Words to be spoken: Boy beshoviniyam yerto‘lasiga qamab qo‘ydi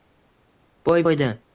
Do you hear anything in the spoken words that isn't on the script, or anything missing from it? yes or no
yes